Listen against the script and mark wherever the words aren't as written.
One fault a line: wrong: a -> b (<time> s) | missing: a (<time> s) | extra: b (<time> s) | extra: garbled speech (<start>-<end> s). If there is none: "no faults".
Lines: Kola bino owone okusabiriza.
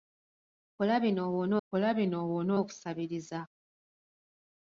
extra: kola bino owone (1.7 s)